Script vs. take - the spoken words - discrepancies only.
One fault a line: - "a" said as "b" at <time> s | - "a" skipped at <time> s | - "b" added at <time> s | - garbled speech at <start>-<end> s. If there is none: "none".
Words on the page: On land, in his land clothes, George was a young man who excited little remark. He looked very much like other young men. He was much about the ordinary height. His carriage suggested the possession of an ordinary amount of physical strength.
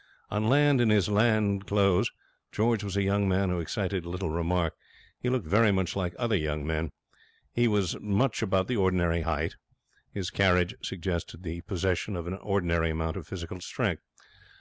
none